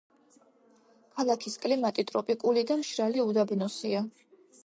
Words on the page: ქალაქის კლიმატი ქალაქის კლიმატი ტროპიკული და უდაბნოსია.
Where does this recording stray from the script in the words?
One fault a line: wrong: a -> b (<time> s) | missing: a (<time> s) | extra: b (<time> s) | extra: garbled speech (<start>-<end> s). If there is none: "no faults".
missing: ქალაქის კლიმატი (2.0 s)
extra: მშრალი (2.8 s)